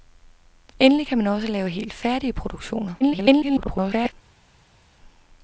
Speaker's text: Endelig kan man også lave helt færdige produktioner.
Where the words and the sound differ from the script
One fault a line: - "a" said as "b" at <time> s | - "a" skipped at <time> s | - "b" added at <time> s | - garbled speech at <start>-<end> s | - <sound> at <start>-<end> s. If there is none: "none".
- garbled speech at 3.0-4.1 s